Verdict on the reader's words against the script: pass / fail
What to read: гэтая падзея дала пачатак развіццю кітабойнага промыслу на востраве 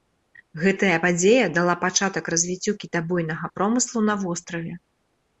pass